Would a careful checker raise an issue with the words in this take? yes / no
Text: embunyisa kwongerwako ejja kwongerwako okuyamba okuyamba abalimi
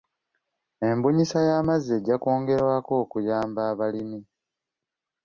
yes